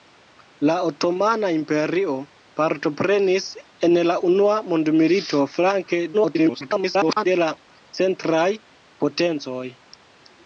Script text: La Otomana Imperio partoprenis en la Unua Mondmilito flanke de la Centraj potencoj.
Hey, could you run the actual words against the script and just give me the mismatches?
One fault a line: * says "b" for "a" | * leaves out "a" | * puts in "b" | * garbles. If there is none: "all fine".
* garbles